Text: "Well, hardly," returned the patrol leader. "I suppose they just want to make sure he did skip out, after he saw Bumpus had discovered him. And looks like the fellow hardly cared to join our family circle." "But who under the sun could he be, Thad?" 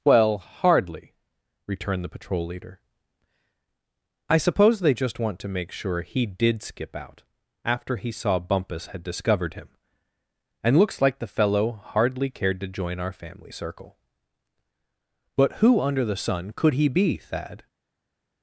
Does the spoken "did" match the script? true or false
true